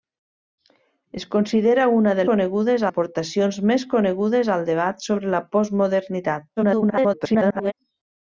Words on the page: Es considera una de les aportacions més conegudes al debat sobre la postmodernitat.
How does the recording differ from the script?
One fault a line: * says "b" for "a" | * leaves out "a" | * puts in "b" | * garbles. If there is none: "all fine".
* says "conegudes" for "les"
* garbles